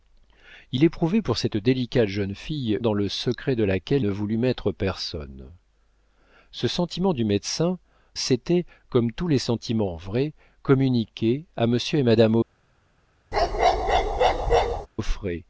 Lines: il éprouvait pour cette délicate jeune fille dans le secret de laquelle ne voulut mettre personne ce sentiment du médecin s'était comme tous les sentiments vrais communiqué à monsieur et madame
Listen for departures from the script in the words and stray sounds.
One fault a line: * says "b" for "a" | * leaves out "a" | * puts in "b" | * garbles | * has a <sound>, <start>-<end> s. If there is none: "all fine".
* has a bark, 13.3-14.9 s